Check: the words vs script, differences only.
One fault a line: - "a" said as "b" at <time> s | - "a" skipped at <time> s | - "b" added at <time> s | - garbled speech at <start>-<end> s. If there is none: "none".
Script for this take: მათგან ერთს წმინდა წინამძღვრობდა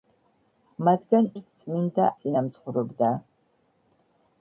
none